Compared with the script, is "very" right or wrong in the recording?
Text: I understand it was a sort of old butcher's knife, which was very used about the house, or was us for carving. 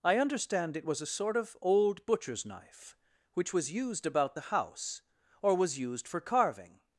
wrong